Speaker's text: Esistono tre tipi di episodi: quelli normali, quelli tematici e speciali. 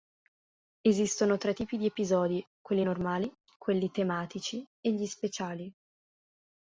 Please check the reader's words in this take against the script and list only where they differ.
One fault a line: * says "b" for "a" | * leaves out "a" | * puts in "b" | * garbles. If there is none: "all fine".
* puts in "gli"